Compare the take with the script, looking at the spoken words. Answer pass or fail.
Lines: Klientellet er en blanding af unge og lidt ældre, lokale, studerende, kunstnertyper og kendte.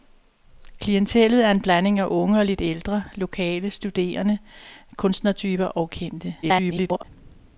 fail